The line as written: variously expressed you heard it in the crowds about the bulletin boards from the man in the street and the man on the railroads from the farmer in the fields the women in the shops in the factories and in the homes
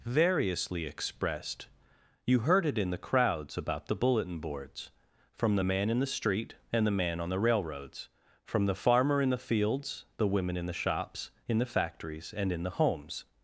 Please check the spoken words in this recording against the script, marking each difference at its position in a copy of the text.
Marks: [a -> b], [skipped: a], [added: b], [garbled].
variously expressed you heard it in the crowds about the bulletin boards from the man in the street and the man on the railroads from the farmer in the fields the women in the shops in the factories and in the homes